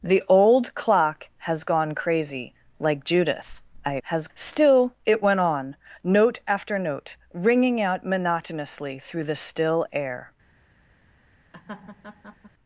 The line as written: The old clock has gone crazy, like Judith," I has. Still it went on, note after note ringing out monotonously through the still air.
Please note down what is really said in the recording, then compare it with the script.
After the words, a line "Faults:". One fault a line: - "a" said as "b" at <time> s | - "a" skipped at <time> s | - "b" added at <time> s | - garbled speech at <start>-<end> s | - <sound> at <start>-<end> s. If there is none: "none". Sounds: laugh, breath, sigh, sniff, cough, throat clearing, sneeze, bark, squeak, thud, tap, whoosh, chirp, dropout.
The old clock has gone crazy, like Judith," I has. Still it went on, note after note ringing out monotonously through the still air.
Faults:
- laugh at 11.5-12.5 s